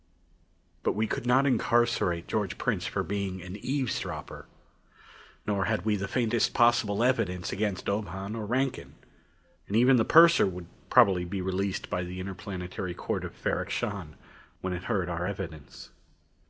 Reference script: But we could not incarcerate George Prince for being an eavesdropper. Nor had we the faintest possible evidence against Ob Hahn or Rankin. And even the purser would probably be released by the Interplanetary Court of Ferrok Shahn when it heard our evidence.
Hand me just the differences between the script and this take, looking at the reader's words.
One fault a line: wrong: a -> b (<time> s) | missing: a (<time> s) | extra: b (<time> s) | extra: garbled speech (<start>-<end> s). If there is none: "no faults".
no faults